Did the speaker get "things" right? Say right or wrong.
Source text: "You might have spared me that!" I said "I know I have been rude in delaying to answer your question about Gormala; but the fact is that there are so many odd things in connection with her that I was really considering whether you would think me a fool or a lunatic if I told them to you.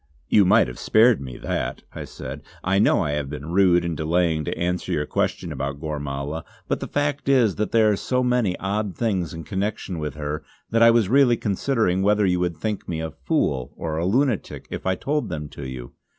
right